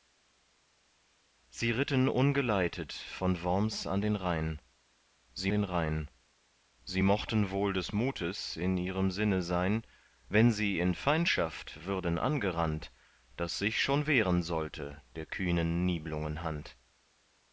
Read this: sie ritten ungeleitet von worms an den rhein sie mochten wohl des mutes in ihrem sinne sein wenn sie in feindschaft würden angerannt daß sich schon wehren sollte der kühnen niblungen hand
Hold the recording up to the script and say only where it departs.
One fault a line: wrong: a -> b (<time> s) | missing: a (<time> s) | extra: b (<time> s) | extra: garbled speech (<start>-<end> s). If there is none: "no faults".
extra: den rhein sie (5.5 s)